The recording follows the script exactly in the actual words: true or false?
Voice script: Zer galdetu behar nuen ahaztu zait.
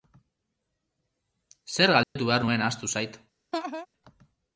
true